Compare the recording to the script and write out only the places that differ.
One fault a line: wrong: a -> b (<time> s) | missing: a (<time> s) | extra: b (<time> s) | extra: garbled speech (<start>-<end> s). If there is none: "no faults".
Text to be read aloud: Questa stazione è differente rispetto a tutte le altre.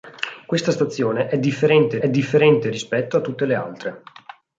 extra: è differente (2.0 s)